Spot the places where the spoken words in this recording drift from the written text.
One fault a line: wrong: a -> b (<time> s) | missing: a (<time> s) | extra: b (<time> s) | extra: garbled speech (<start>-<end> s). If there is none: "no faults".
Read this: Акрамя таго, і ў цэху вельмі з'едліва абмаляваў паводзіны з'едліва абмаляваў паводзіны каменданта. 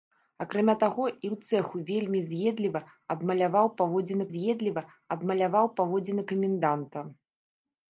no faults